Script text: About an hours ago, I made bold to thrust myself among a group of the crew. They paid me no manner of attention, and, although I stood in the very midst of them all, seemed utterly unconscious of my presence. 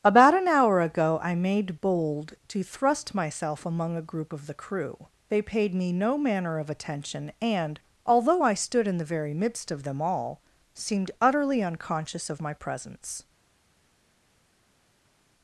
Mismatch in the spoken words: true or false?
true